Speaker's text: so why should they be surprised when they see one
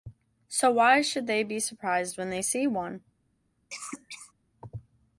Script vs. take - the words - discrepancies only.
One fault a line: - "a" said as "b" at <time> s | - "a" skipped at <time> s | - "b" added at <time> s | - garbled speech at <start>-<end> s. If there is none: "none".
none